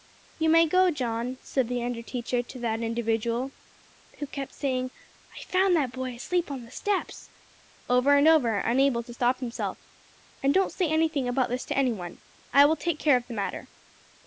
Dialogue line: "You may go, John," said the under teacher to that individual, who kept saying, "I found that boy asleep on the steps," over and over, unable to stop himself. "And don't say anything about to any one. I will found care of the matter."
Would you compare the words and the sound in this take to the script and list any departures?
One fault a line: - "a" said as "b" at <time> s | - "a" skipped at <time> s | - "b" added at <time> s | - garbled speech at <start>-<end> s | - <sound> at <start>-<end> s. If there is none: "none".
- "this" added at 11.5 s
- "found" said as "take" at 12.8 s